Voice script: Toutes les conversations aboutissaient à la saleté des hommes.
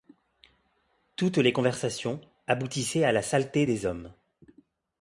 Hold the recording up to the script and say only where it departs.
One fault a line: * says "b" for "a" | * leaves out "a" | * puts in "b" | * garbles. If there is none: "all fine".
all fine